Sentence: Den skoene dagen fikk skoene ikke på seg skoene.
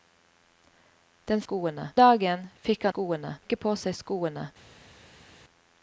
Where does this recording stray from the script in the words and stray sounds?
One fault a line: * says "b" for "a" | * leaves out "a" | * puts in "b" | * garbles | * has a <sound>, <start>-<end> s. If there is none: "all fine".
all fine